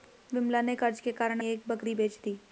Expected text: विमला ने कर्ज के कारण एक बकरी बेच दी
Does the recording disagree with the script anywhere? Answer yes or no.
no